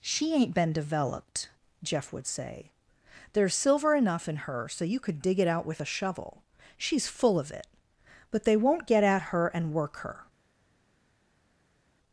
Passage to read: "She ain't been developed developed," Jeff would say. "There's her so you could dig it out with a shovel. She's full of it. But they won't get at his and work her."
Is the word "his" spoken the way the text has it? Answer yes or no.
no